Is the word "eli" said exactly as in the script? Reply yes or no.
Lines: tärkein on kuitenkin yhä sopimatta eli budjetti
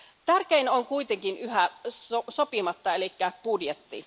yes